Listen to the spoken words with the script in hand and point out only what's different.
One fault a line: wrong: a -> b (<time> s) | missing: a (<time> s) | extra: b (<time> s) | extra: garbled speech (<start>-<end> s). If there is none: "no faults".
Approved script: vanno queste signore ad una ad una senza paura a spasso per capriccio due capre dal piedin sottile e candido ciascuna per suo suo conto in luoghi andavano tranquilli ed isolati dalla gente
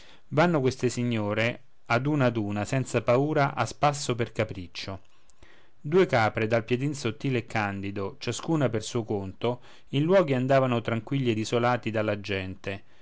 missing: suo (9.0 s)